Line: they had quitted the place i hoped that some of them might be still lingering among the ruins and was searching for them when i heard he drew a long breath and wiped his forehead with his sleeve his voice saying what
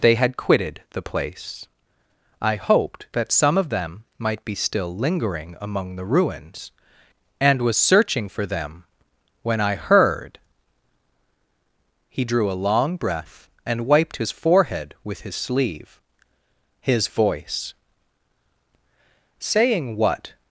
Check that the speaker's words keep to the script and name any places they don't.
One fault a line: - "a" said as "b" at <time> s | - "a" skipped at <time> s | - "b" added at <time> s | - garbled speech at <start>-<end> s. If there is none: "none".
none